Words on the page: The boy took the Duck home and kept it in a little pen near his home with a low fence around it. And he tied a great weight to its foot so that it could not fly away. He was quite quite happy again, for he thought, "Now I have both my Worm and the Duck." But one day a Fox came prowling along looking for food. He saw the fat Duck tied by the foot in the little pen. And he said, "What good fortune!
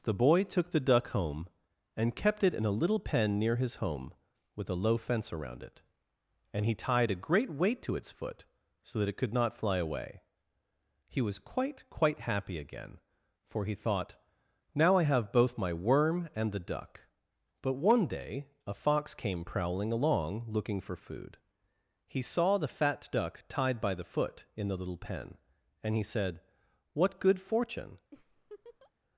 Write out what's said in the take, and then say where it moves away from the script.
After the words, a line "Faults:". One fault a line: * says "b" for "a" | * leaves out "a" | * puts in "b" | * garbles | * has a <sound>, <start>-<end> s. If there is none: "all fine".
The boy took the Duck home and kept it in a little pen near his home with a low fence around it. And he tied a great weight to its foot so that it could not fly away. He was quite quite happy again, for he thought, "Now I have both my Worm and the Duck." But one day a Fox came prowling along looking for food. He saw the fat Duck tied by the foot in the little pen. And he said, "What good fortune!
Faults:
* has a laugh, 28.1-28.9 s